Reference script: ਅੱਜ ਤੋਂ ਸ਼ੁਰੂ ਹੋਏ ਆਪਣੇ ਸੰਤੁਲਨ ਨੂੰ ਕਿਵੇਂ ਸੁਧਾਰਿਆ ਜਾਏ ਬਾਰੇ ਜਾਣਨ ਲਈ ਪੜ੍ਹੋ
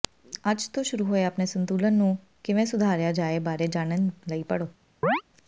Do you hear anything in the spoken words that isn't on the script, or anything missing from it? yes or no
no